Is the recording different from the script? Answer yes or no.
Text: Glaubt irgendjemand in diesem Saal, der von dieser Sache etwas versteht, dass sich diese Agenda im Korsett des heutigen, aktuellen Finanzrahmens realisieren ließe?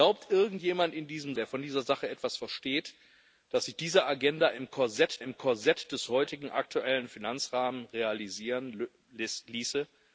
yes